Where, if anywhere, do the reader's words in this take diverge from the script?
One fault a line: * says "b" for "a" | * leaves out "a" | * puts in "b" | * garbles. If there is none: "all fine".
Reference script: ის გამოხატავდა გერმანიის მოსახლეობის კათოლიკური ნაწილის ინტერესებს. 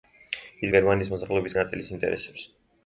* leaves out "გამოხატავდა"
* leaves out "კათოლიკური"